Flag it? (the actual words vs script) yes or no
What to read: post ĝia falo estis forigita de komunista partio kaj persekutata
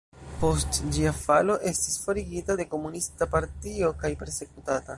no